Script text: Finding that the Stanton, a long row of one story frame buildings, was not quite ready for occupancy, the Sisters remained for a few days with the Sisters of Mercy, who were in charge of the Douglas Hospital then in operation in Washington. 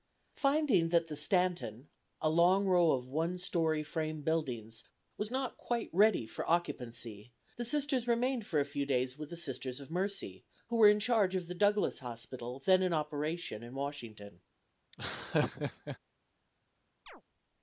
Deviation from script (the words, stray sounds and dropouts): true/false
true